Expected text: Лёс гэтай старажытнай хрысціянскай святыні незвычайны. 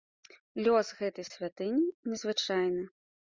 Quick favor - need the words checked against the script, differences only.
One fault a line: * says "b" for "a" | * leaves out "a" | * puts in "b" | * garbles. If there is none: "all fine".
* leaves out "старажытнай хрысціянскай"